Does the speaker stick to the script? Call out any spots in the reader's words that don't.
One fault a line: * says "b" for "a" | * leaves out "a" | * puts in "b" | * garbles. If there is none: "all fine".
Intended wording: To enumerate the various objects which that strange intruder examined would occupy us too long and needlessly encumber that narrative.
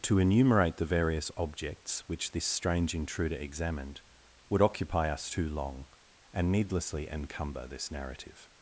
* says "this" for "that"
* says "this" for "that"